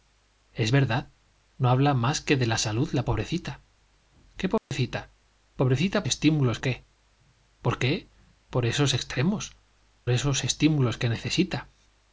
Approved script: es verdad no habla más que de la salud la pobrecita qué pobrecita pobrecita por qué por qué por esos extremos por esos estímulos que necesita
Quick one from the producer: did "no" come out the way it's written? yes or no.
yes